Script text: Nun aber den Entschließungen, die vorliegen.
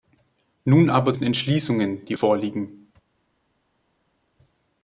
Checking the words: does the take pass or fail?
pass